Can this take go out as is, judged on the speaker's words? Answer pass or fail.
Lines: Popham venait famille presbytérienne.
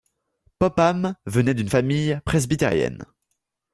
fail